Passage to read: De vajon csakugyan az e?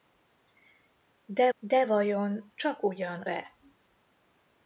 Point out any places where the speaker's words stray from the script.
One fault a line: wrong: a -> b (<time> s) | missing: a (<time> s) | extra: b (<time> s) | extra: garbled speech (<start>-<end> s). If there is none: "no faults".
extra: de (1.6 s)
missing: az (3.2 s)